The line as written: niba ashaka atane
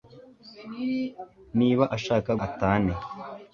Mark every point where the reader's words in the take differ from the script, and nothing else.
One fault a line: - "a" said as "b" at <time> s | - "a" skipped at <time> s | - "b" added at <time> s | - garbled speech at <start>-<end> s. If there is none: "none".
none